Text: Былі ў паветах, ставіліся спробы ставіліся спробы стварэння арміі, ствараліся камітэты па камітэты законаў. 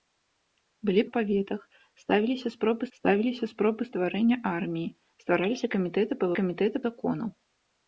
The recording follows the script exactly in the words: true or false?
true